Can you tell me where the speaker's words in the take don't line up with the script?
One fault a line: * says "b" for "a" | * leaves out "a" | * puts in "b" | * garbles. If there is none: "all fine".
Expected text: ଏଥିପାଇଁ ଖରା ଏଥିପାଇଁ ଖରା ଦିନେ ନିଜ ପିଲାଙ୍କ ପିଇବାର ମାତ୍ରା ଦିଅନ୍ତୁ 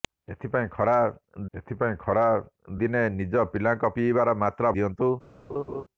all fine